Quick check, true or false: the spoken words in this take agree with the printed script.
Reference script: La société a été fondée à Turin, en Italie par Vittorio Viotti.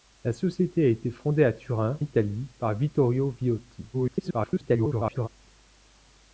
false